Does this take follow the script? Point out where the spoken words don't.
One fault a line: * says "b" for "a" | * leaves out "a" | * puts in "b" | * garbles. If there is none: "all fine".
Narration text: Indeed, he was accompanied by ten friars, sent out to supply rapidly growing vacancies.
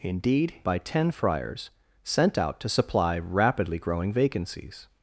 * leaves out "he was accompanied"